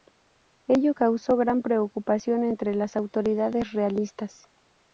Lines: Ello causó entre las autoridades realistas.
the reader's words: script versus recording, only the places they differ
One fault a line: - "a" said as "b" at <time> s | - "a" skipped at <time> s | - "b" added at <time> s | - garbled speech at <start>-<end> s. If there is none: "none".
- "gran preocupación" added at 1.4 s